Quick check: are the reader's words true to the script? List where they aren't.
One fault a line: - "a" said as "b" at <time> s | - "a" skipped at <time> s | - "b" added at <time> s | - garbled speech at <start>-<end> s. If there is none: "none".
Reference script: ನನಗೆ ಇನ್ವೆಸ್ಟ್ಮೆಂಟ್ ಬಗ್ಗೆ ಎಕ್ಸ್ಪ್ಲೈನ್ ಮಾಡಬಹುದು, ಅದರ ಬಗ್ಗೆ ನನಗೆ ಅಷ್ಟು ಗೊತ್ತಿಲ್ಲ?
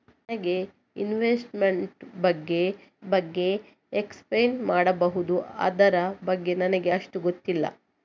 - "ಬಗ್ಗೆ" added at 3.1 s